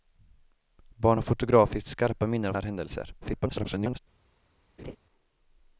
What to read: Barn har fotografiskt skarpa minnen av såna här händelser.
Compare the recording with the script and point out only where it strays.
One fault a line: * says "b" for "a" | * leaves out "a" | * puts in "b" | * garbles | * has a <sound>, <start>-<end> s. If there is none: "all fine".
* leaves out "såna"
* garbles
* has a laugh, 4.8-5.0 s